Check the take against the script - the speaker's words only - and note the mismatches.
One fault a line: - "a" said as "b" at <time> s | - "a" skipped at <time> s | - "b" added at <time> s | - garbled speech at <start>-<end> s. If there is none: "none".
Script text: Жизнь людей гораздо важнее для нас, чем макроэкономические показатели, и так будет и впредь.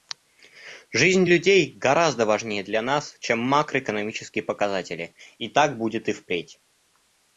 none